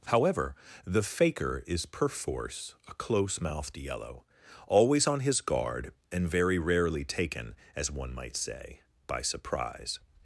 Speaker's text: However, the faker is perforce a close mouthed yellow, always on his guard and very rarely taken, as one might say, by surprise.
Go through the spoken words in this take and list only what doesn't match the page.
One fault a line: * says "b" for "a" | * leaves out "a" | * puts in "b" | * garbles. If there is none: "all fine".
all fine